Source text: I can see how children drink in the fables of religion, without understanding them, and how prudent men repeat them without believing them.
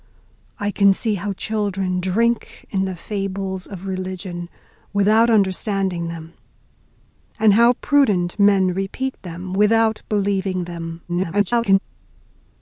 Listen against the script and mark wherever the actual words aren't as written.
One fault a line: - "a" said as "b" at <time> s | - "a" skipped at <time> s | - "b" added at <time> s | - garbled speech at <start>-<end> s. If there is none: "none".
- garbled speech at 11.1-11.8 s